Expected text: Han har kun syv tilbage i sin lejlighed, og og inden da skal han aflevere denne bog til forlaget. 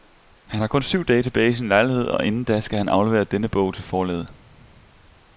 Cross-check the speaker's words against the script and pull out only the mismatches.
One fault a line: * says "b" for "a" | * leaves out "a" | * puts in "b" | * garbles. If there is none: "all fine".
* puts in "dage"
* leaves out "og"